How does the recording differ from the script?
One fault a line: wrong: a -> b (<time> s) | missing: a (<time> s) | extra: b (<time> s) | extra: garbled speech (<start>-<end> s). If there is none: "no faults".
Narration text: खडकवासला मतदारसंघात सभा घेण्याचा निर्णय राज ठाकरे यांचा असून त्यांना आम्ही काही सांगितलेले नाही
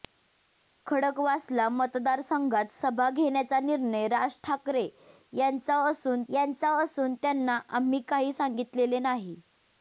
extra: यांचा असून (6.3 s)